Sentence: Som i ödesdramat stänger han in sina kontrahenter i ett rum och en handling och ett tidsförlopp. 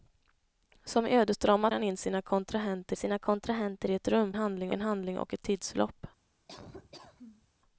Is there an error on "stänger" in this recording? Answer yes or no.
yes